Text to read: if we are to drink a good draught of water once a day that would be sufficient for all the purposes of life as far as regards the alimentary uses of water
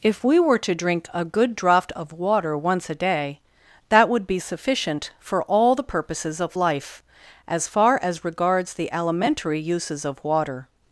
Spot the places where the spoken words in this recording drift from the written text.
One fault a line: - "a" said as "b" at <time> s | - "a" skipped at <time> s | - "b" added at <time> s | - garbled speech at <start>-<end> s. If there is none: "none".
- "are" said as "were" at 0.4 s